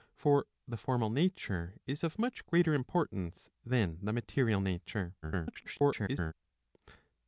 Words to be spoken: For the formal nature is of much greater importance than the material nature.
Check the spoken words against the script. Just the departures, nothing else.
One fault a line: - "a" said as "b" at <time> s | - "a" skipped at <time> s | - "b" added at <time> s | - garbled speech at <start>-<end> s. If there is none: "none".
- garbled speech at 5.2-6.3 s